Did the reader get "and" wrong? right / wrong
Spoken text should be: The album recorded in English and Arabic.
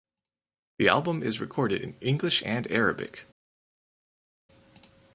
right